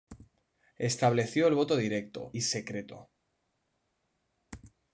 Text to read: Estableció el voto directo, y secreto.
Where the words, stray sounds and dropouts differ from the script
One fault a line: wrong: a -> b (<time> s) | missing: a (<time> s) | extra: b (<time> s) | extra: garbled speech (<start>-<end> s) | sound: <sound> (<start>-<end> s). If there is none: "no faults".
no faults